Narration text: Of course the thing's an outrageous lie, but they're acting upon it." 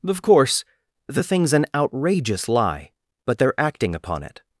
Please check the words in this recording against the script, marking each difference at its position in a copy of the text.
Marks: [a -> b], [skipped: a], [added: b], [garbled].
Of course the thing's an outrageous lie, but they're acting upon it."